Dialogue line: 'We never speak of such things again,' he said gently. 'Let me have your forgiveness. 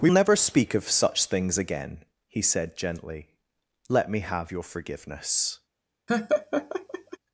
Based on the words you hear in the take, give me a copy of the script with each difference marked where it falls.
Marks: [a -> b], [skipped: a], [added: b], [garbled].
'We never speak of such things again,' he said gently. 'Let me have your forgiveness.